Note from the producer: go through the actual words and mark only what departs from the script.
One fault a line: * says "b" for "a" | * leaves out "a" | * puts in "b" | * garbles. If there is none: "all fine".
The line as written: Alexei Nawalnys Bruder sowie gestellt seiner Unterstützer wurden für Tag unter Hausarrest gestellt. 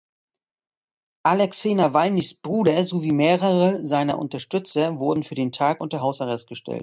* says "mehrere" for "gestellt"
* puts in "den"